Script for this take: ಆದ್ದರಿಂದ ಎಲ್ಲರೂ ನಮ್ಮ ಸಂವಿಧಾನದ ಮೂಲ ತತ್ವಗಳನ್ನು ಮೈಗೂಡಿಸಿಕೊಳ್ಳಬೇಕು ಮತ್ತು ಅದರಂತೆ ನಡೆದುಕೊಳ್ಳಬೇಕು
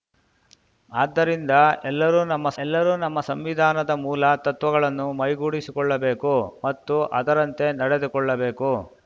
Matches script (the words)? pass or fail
fail